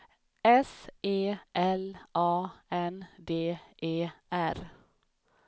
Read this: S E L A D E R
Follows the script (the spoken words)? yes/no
no